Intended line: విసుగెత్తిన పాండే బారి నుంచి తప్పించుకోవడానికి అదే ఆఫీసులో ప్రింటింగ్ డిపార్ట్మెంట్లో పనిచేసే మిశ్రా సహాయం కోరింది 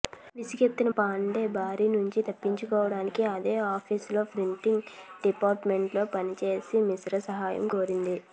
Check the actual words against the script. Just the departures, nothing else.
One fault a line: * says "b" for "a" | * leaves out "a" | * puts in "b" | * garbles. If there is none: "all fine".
all fine